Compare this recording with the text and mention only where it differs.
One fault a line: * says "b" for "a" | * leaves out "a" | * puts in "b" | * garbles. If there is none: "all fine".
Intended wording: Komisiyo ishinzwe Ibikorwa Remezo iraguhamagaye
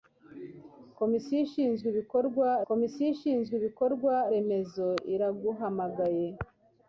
* puts in "komisiyo ishinzwe Ibikorwa"